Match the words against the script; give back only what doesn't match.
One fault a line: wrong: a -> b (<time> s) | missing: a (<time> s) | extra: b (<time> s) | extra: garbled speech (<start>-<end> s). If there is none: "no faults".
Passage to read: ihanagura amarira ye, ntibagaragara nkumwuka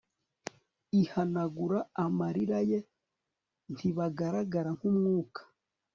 no faults